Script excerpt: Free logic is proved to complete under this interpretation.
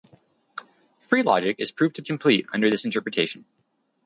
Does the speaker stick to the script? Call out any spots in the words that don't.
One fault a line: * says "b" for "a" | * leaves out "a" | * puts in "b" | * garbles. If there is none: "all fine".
all fine